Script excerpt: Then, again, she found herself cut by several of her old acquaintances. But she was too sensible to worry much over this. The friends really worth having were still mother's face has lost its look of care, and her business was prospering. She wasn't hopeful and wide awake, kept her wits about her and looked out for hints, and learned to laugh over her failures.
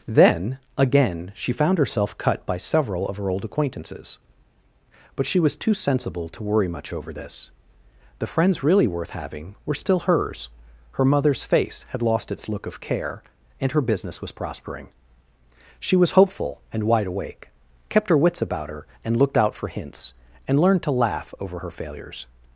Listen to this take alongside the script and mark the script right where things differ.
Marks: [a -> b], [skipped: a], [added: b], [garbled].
Then, again, she found herself cut by several of her old acquaintances. But she was too sensible to worry much over this. The friends really worth having were still [added: hers her] mother's face [has -> had] lost its look of care, and her business was prospering. She [wasn't -> was] hopeful and wide awake, kept her wits about her and looked out for hints, and learned to laugh over her failures.